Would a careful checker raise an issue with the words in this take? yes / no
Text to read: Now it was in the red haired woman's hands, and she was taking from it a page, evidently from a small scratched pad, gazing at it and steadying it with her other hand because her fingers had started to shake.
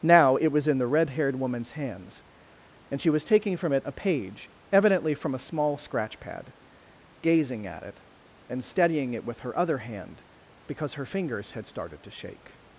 yes